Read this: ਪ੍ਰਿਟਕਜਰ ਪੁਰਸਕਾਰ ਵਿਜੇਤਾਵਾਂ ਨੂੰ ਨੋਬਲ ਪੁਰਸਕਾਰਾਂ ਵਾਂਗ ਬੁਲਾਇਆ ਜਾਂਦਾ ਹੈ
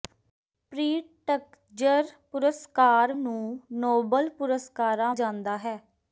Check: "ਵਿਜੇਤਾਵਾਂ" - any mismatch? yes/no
yes